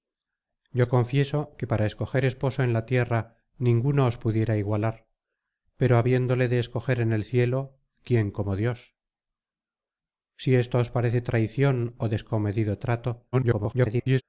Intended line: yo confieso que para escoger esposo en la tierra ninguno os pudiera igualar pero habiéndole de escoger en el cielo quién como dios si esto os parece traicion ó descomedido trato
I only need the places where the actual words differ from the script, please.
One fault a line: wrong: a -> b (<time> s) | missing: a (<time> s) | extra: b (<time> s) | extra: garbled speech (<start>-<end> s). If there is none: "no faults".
extra: garbled speech (13.3-14.2 s)